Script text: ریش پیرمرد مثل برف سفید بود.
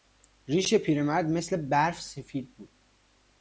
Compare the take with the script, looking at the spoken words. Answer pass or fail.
pass